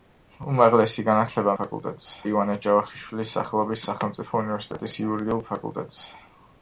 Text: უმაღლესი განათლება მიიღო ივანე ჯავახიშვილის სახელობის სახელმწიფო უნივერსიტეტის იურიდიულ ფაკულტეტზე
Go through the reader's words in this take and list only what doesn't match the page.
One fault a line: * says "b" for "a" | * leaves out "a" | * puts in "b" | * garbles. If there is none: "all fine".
* says "ფაკულტეტზე" for "მიიღო"